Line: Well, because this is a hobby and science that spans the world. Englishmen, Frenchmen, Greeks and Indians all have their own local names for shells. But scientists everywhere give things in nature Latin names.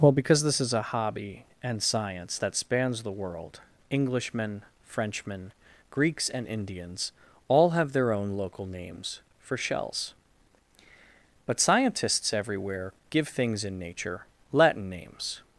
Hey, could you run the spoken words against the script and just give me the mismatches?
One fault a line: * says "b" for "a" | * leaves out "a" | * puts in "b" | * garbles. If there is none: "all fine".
all fine